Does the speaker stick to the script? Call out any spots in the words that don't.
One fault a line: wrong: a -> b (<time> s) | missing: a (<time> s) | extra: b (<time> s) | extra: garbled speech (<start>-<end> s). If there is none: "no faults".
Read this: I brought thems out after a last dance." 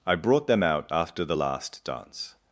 wrong: thems -> them (0.5 s)
wrong: a -> the (1.2 s)